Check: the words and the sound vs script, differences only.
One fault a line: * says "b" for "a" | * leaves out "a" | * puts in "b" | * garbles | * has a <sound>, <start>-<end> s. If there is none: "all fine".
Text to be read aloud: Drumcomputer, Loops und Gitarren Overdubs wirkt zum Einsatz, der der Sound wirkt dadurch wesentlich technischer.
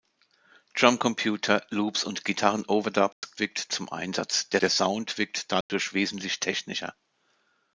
* has a dropout, 3.1-3.2 s
* has a dropout, 5.6-5.7 s